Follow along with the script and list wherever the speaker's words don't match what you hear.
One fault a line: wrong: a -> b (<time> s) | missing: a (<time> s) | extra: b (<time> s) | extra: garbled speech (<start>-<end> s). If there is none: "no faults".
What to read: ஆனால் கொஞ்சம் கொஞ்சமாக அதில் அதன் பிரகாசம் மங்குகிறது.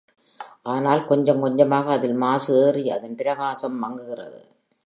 extra: மாசு ஏறி (2.1 s)